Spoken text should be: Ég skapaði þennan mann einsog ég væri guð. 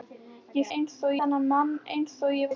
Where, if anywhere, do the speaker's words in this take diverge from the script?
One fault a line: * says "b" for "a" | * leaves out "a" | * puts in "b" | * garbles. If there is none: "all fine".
* says "einsog" for "skapaði"
* leaves out "væri"